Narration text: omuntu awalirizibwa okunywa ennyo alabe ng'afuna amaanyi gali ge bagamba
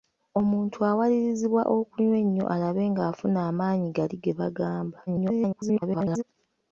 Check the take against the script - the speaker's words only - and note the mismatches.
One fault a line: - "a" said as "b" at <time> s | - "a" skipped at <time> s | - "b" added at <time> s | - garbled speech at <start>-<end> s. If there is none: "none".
- garbled speech at 5.1-6.2 s